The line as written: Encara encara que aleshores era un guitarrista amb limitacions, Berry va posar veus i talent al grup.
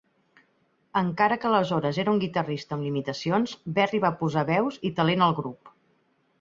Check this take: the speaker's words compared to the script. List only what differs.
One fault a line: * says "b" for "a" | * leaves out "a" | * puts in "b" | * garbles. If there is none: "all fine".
* leaves out "encara"